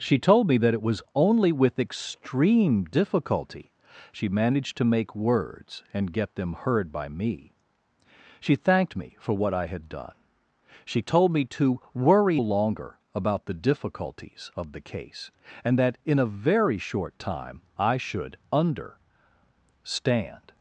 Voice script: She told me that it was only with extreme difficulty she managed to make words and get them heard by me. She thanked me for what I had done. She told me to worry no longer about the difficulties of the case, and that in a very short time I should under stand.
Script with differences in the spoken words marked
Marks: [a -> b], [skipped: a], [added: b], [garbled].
She told me that it was only with extreme difficulty she managed to make words and get them heard by me. She thanked me for what I had done. She told me to worry [skipped: no] longer about the difficulties of the case, and that in a very short time I should under stand.